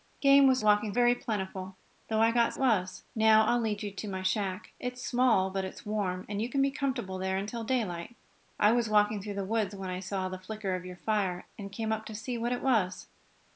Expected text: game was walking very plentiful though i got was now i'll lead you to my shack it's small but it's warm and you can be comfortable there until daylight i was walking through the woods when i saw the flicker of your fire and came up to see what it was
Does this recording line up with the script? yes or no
yes